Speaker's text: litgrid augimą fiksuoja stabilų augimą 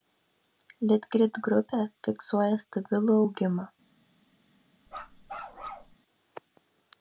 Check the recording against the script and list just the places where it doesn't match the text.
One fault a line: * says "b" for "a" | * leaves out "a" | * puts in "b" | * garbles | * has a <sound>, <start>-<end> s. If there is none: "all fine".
* says "grupė" for "augimą"
* has a bark, 4.9-6.0 s